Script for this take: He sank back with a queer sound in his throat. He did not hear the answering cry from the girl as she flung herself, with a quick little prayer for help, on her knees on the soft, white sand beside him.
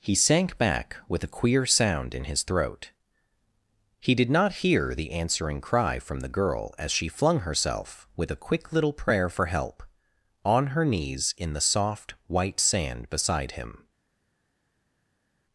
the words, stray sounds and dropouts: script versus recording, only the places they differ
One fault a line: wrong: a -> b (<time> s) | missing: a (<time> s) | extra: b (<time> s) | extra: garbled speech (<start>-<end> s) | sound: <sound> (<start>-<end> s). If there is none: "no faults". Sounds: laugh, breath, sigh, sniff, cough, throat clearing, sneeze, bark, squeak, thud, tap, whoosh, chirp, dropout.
wrong: on -> in (11.4 s)